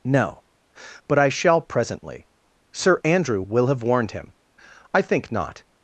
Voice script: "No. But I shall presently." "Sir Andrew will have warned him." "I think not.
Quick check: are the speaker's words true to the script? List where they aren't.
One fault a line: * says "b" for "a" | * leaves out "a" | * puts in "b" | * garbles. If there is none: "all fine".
all fine